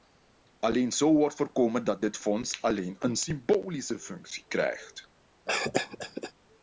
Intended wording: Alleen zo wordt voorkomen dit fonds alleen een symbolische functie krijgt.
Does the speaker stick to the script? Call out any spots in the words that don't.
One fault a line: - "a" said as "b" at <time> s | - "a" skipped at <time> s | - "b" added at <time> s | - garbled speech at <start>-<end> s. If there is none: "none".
- "dat" added at 1.8 s